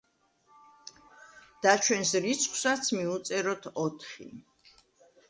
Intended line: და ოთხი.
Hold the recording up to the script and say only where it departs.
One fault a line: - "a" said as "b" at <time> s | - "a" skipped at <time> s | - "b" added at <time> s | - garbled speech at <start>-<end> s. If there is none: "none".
- "ჩვენს რიცხვსაც მივუწეროთ" added at 1.9 s